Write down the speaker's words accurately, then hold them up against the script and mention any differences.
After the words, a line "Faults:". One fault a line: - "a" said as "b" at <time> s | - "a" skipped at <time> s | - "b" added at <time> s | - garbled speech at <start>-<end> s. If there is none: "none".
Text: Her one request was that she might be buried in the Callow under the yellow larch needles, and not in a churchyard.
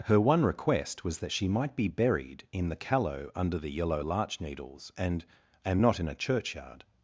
Her one request was that she might be buried in the Callow under the yellow larch needles, and and not in a churchyard.
Faults:
- "and" added at 5.6 s